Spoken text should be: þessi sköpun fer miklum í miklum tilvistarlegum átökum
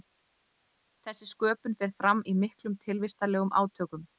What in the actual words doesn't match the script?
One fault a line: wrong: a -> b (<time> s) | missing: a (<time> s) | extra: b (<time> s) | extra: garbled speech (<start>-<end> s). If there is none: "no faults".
wrong: miklum -> fram (2.0 s)